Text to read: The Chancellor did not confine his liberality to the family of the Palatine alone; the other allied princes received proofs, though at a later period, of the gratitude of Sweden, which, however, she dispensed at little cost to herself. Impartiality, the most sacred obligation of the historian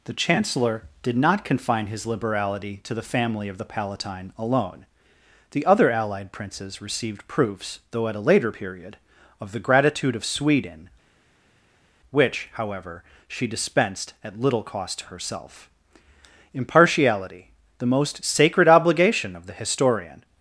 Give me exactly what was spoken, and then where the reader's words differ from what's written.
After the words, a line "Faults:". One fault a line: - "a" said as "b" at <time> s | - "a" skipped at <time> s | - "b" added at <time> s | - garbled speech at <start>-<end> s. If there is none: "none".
The Chancellor did not confine his liberality to the family of the Palatine alone; the other allied princes received proofs, though at a later period, of the gratitude of Sweden, which, however, she dispensed at little cost to herself. Impartiality, the most sacred obligation of the historian
Faults:
none